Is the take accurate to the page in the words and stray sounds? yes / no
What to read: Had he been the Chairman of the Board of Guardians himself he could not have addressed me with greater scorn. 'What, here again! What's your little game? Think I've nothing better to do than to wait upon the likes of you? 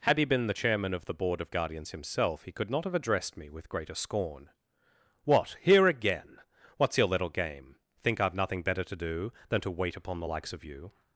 yes